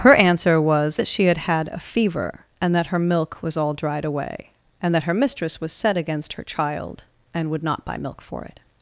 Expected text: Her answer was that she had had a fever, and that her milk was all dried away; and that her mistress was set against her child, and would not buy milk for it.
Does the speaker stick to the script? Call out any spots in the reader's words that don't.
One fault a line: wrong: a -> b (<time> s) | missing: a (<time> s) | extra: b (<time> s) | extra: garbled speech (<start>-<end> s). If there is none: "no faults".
no faults